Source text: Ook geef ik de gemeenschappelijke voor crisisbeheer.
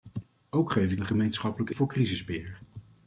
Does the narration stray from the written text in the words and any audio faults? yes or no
no